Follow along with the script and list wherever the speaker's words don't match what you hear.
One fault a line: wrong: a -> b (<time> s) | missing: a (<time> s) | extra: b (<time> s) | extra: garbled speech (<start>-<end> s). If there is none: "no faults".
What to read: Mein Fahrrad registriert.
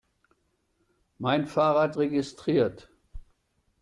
no faults